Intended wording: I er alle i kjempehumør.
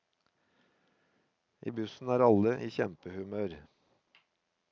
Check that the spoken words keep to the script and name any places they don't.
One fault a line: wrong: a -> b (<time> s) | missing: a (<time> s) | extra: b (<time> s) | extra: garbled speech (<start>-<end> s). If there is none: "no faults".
extra: bussen (1.8 s)